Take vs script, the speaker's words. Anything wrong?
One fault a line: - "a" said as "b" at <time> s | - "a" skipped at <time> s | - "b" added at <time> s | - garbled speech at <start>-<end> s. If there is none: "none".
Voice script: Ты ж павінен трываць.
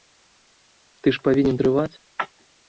none